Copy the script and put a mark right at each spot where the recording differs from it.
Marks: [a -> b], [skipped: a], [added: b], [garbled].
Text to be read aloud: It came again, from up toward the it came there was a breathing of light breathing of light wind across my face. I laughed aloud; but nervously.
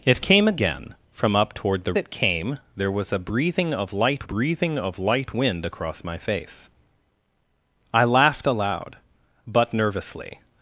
It came again, from up toward the it came there was a breathing of light breathing of light wind across my face. I laughed aloud; but nervously.